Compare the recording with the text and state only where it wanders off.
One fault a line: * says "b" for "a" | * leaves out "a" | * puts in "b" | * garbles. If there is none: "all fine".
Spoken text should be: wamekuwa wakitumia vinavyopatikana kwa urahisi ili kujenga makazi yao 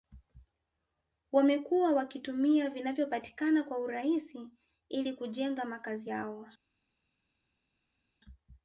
all fine